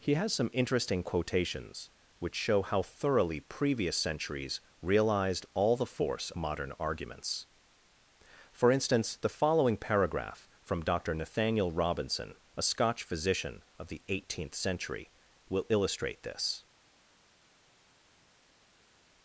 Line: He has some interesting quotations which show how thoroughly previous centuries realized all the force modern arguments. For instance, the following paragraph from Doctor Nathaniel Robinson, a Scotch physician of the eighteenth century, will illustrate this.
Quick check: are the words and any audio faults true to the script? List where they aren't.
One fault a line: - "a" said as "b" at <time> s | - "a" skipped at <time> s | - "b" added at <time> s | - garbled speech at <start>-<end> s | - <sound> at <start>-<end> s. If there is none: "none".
none